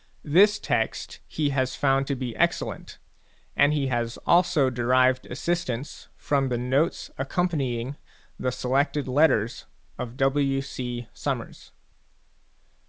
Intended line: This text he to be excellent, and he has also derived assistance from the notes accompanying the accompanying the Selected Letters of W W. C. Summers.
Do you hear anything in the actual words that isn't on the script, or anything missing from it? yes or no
yes